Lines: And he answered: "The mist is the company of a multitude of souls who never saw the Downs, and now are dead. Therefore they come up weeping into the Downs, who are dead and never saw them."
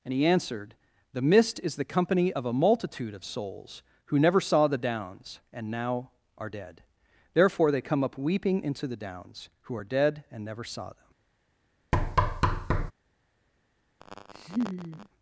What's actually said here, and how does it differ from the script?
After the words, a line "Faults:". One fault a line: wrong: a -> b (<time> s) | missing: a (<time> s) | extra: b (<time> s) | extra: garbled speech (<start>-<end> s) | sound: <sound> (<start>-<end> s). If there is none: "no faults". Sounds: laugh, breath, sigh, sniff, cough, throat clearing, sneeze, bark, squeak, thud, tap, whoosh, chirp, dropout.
And he answered: "The mist is the company of a multitude of souls who never saw the Downs, and now are dead. Therefore they come up weeping into the Downs, who are dead and never saw them."
Faults:
sound: thud (11.9-12.9 s)
sound: laugh (14.0-15.1 s)